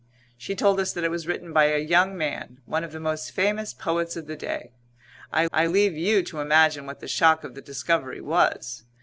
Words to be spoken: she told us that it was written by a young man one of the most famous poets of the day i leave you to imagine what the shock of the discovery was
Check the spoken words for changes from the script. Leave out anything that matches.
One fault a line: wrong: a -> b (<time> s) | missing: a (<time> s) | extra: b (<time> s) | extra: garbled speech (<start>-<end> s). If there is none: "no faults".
extra: i (5.5 s)